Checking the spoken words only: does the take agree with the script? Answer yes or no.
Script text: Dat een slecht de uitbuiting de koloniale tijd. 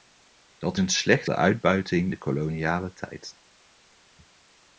yes